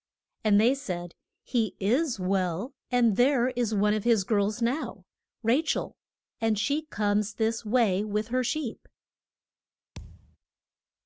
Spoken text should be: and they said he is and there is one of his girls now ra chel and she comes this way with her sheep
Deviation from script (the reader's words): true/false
true